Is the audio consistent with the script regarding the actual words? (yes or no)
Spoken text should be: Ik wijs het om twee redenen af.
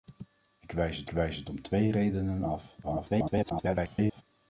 no